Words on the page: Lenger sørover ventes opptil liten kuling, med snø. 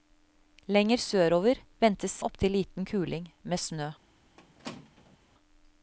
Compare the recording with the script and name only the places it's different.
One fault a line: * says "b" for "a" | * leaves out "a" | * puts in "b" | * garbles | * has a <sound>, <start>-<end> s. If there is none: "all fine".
* has a squeak, 4.4-5.2 s